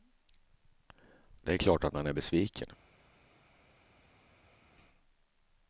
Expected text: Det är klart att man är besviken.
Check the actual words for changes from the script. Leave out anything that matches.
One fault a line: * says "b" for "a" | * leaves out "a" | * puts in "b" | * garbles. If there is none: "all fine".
all fine